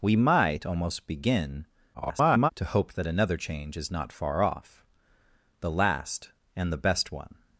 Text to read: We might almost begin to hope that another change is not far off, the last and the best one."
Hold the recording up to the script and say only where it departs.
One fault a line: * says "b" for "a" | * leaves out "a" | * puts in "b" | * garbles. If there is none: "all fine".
* garbles